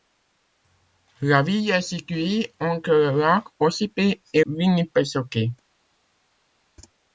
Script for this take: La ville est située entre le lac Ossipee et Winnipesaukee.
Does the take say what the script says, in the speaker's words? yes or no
yes